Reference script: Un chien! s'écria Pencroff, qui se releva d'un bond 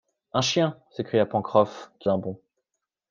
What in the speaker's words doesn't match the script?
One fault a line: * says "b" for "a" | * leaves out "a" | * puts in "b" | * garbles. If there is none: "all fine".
* leaves out "se releva"